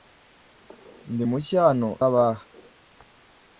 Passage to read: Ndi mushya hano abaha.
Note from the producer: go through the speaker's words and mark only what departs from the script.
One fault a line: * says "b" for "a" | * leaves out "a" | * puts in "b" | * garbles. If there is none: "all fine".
all fine